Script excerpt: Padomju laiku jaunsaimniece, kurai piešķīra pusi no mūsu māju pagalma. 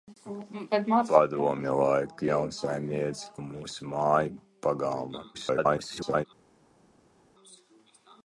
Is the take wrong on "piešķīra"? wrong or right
wrong